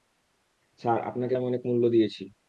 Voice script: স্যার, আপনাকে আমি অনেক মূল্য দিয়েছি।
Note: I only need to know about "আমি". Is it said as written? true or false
true